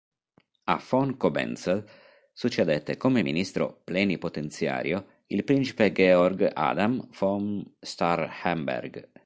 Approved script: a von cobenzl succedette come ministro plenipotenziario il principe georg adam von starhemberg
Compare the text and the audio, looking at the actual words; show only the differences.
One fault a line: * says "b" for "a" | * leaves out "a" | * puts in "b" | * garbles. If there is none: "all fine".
all fine